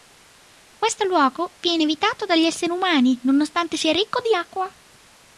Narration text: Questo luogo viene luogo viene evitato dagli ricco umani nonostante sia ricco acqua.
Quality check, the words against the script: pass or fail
fail